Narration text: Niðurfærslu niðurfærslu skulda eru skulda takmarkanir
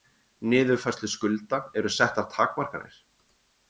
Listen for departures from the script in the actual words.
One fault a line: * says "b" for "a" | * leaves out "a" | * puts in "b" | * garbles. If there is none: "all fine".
* leaves out "niðurfærslu"
* says "settar" for "skulda"